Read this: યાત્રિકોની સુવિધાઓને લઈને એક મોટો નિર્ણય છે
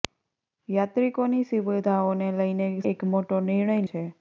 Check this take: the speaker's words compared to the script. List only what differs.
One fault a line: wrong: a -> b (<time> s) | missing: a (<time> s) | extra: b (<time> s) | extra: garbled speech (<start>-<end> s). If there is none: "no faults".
no faults